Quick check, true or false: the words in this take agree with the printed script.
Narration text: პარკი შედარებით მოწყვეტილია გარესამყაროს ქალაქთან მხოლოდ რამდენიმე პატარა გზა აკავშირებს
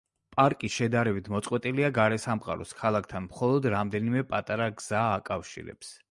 true